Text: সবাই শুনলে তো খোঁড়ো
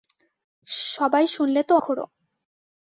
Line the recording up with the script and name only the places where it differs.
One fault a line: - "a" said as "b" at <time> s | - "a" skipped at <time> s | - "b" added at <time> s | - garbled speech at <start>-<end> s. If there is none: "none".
none